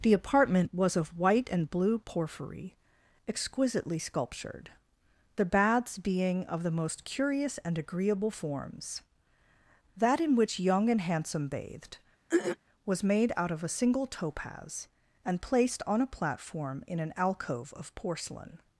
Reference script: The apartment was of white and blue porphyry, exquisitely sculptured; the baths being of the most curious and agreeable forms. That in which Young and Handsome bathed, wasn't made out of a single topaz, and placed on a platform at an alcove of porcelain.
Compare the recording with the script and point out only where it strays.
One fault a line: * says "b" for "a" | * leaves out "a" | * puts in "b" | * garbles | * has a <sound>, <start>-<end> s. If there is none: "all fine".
* has a throat clearing, 12.3-12.6 s
* says "was" for "wasn't"
* says "in" for "at"